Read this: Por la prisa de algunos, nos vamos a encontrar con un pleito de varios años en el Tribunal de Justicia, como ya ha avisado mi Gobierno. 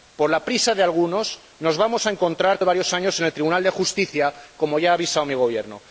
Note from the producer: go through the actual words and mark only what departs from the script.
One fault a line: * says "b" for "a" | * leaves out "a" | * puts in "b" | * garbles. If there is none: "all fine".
* leaves out "con un pleito"